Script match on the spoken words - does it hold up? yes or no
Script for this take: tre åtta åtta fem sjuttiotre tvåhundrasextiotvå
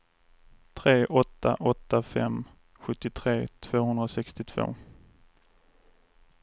yes